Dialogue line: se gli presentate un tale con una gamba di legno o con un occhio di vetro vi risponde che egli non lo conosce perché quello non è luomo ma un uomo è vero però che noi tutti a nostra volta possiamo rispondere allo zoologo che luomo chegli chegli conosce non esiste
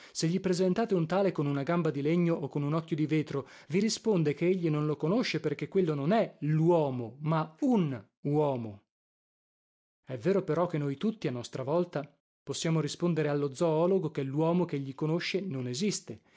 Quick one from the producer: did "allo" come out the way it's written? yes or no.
yes